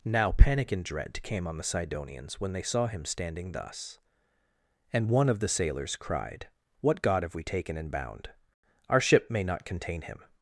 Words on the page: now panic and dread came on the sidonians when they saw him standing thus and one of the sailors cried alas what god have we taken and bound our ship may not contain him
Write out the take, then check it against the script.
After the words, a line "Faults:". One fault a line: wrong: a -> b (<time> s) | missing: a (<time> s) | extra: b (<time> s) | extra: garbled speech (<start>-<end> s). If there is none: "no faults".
now panic and dread came on the sidonians when they saw him standing thus and one of the sailors cried what god have we taken and bound our ship may not contain him
Faults:
missing: alas (6.5 s)